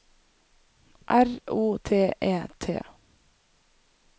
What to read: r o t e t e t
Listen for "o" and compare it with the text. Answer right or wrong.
right